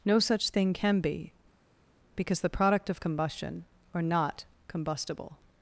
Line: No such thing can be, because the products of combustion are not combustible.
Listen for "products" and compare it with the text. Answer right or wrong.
wrong